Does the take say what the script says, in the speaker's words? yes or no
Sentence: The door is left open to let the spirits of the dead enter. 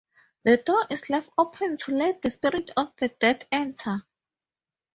yes